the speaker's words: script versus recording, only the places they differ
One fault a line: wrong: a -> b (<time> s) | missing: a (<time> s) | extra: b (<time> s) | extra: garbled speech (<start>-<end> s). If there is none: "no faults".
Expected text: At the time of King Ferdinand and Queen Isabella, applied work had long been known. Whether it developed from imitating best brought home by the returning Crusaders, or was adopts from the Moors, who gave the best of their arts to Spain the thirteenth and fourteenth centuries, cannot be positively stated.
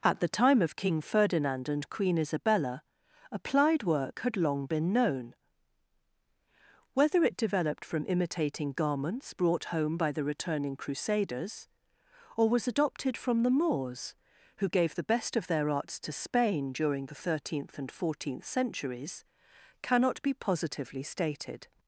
wrong: best -> garments (8.7 s)
wrong: adopts -> adopted (12.7 s)
extra: during (16.7 s)